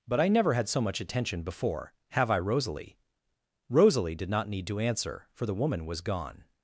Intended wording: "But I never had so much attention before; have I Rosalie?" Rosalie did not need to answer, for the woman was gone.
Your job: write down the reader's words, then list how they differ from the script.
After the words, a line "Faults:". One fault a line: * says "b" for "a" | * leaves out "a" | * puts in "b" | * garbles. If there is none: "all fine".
"But I never had so much attention before; have I Rosalie?" Rosalie did not need to answer, for the woman was gone.
Faults:
all fine